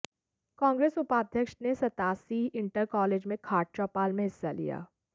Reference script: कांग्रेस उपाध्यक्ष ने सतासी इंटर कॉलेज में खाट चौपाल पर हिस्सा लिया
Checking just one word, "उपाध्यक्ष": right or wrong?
right